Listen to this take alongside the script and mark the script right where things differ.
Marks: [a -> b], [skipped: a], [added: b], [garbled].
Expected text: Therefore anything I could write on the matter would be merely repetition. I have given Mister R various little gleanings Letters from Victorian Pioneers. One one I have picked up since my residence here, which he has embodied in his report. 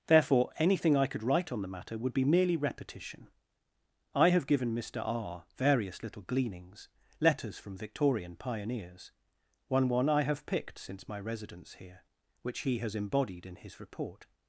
Therefore anything I could write on the matter would be merely repetition. I have given Mister R various little gleanings Letters from Victorian Pioneers. One one I have picked [skipped: up] since my residence here, which he has embodied in his report.